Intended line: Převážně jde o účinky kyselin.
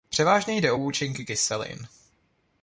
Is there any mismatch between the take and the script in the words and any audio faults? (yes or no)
no